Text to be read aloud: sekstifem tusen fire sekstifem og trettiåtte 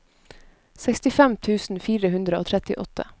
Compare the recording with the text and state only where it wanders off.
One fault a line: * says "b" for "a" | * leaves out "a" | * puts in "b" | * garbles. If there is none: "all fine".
* says "hundre" for "sekstifem"